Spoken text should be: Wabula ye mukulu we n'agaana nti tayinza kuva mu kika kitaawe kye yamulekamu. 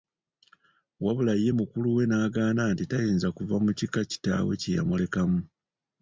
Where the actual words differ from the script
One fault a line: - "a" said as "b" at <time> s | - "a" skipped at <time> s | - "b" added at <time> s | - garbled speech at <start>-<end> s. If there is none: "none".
none